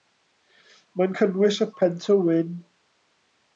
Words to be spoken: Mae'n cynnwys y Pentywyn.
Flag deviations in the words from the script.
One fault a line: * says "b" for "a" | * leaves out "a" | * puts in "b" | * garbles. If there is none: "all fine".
all fine